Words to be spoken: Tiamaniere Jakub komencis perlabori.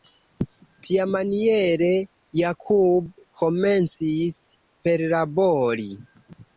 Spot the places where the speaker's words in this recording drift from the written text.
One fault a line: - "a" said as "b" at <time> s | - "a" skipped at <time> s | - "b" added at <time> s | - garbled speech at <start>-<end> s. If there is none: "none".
none